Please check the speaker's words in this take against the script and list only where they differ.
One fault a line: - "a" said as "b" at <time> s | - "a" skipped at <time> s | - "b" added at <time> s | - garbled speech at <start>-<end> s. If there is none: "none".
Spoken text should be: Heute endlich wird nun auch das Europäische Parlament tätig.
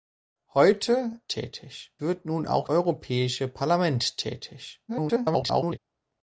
- "endlich" said as "tätig" at 1.3 s
- "das" skipped at 2.7 s
- garbled speech at 4.9-5.8 s